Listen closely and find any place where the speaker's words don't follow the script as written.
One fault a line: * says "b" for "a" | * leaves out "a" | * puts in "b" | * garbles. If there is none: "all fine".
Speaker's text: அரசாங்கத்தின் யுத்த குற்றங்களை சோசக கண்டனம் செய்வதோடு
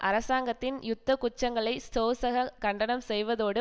all fine